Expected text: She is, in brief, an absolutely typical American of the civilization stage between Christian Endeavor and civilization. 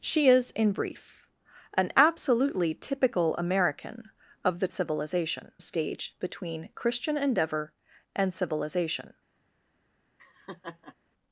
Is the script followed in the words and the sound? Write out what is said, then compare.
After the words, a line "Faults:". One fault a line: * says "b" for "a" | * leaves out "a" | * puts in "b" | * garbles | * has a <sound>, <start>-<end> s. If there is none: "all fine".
She is, in brief, an absolutely typical American of the civilization stage between Christian Endeavor and civilization.
Faults:
* has a laugh, 10.2-11.0 s